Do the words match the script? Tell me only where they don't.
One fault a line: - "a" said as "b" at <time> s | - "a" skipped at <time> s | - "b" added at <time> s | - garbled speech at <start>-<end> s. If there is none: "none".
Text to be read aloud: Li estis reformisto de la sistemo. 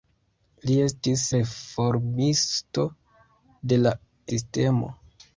none